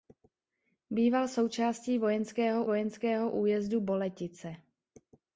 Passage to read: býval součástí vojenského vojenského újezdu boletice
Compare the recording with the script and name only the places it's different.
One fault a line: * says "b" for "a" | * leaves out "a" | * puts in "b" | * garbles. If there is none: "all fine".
all fine